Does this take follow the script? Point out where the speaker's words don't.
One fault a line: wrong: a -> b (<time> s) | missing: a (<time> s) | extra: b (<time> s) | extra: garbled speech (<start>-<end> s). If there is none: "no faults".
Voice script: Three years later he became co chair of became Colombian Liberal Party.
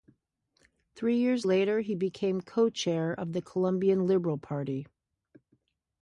wrong: became -> the (3.3 s)